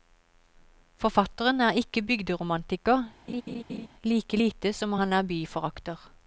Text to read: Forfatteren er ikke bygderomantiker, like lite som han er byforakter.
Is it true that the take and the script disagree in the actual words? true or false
false